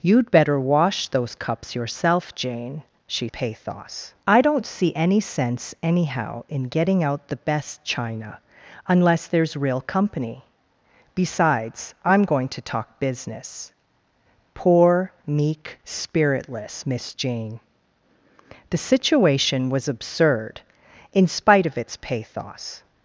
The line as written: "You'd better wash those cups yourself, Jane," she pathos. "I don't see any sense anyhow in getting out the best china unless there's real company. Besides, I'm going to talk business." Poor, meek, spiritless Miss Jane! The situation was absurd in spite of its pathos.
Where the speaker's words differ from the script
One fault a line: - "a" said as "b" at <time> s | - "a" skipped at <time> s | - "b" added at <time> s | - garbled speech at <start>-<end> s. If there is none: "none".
none